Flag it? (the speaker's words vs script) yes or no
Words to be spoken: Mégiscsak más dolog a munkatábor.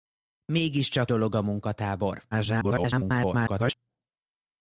yes